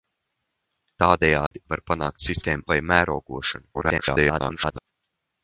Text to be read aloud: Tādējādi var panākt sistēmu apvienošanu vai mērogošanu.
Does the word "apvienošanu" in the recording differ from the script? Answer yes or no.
yes